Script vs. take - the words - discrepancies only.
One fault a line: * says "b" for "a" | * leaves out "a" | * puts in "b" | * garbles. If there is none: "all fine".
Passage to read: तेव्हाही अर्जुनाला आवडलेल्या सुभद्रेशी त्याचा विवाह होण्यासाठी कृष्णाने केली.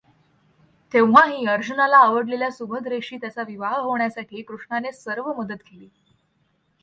* puts in "सर्व मदत"